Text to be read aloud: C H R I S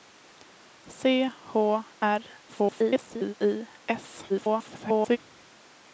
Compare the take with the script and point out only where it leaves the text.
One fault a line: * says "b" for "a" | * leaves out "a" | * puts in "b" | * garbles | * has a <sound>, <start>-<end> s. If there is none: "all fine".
* garbles
* garbles